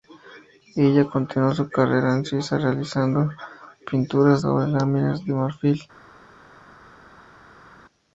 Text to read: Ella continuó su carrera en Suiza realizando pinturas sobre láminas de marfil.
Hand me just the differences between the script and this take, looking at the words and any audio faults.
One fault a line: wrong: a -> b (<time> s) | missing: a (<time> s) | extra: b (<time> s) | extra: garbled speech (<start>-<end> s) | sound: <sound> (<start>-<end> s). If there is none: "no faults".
no faults